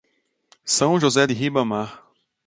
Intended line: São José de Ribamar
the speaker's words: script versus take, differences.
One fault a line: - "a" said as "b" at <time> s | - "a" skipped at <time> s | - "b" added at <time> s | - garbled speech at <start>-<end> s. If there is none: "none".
none